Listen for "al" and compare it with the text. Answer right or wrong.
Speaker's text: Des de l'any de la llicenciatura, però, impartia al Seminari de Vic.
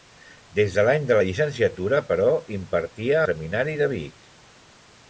wrong